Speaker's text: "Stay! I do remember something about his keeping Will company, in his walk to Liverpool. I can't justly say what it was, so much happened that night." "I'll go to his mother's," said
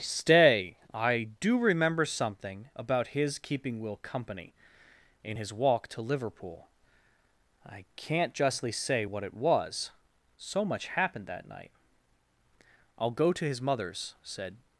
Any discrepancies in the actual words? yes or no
no